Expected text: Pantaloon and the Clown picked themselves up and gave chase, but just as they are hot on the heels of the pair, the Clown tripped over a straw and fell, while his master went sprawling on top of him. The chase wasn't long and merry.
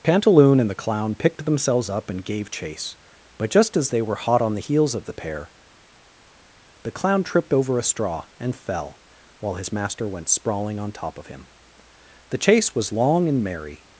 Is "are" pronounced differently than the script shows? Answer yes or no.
yes